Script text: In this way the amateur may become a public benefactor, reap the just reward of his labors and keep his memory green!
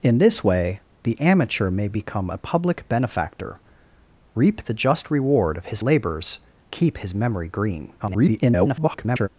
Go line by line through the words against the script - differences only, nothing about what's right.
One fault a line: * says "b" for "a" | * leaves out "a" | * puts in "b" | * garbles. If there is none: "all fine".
* leaves out "and"
* garbles